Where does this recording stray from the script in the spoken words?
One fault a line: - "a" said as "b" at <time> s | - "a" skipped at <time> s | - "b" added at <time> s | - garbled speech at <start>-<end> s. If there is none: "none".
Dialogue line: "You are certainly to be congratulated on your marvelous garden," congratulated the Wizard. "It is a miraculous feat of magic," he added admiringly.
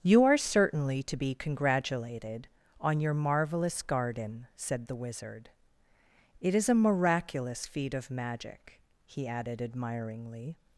- "congratulated" said as "said" at 4.5 s